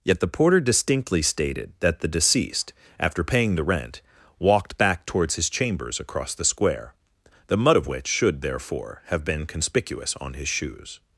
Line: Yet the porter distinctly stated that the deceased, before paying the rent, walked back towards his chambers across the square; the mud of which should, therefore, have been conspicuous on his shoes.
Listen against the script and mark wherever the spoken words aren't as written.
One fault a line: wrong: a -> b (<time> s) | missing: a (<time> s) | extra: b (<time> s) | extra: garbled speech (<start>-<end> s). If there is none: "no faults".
wrong: before -> after (3.0 s)